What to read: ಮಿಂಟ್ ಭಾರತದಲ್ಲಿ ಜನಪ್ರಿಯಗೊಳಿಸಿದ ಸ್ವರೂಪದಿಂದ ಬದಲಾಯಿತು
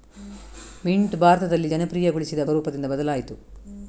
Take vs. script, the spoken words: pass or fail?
pass